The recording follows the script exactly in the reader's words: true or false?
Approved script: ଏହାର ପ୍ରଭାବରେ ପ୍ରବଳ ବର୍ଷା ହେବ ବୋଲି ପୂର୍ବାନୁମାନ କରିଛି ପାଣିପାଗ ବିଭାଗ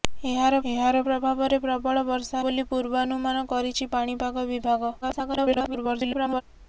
false